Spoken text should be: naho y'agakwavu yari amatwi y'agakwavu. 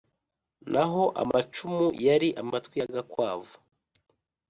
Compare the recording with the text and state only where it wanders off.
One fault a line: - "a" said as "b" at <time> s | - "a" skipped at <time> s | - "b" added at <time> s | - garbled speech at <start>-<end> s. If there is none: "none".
- "y'agakwavu" said as "amacumu" at 1.2 s